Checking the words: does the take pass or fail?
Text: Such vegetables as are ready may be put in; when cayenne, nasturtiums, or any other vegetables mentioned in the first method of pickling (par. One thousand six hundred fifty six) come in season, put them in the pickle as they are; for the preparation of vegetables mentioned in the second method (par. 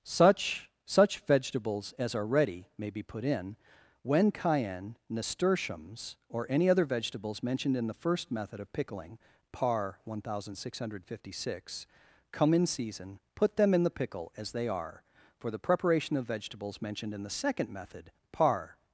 fail